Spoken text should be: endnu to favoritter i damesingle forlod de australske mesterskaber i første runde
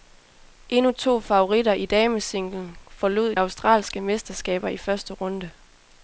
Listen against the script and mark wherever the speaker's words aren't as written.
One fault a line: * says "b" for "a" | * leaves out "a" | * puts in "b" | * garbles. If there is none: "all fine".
* leaves out "de"